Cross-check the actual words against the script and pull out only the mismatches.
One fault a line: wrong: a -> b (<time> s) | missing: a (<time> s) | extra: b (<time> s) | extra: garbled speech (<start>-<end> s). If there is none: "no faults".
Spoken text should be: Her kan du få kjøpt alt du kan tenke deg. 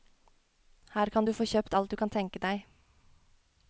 no faults